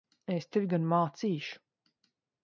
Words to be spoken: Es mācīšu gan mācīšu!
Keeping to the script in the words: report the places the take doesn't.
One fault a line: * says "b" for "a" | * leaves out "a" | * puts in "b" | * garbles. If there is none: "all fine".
* says "tevi" for "mācīšu"